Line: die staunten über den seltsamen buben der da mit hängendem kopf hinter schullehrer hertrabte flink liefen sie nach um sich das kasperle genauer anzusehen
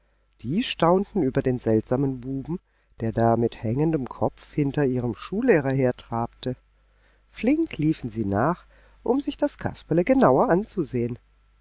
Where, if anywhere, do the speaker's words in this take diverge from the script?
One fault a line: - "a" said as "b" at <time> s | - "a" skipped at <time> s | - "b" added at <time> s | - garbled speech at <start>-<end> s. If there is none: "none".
- "ihrem" added at 4.8 s